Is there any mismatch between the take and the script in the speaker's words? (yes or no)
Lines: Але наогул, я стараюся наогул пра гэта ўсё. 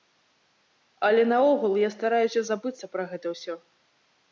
yes